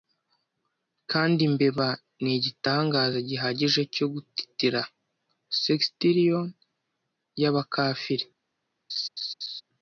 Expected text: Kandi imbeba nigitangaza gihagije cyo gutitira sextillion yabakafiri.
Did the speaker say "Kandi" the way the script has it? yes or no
yes